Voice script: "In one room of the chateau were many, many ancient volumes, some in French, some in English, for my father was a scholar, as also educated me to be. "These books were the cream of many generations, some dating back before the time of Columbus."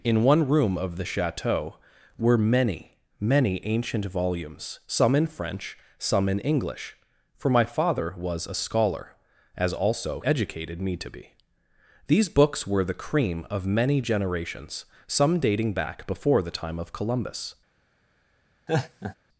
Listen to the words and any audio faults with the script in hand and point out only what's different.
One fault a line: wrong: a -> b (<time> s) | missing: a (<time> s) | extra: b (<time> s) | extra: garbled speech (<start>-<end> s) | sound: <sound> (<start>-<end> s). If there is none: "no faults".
sound: laugh (18.7-19.2 s)